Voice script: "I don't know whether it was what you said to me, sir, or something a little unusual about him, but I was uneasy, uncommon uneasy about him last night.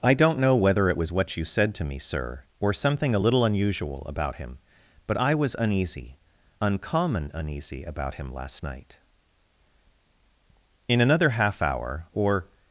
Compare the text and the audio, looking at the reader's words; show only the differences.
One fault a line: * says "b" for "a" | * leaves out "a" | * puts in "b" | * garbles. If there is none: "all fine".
* puts in "In another half hour or"